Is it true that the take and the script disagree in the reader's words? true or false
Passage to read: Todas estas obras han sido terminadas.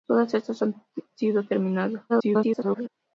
true